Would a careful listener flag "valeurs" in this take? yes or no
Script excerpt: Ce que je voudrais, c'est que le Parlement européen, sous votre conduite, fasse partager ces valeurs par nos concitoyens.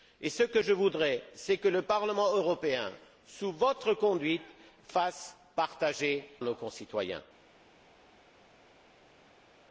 yes